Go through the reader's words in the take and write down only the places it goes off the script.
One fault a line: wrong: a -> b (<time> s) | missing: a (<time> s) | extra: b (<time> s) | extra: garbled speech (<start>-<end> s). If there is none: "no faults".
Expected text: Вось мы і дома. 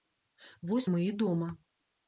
no faults